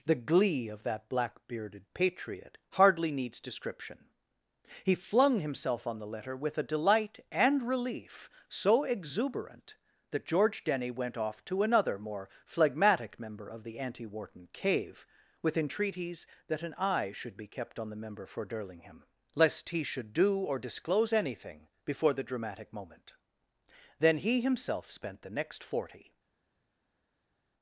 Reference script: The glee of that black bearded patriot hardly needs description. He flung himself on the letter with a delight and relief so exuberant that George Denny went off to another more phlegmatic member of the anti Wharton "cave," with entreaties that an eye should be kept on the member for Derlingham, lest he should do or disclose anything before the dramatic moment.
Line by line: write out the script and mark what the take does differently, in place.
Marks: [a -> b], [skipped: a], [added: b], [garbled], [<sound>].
The glee of that black bearded patriot hardly needs description. He flung himself on the letter with a delight and relief so exuberant that George Denny went off to another more phlegmatic member of the anti Wharton "cave," with entreaties that an eye should be kept on the member for Derlingham, lest he should do or disclose anything before the dramatic moment. [added: Then he himself spent the next forty]